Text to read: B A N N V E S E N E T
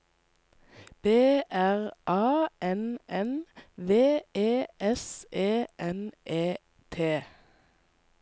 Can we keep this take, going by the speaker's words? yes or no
no